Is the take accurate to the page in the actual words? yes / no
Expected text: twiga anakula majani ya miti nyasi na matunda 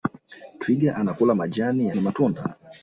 no